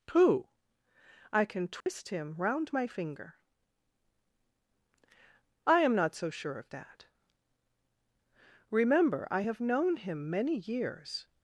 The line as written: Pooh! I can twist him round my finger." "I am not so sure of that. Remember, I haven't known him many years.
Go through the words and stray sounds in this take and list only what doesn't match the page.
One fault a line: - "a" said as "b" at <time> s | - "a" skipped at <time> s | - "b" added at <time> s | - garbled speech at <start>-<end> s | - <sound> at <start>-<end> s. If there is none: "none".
- dropout at 1.8-1.9 s
- "haven't" said as "have" at 9.4 s